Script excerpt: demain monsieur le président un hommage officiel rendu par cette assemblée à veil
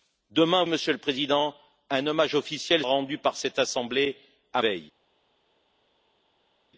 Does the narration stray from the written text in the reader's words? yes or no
no